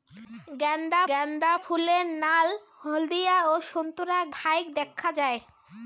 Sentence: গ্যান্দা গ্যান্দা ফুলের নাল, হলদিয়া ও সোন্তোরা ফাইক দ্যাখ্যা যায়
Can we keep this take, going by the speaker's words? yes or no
yes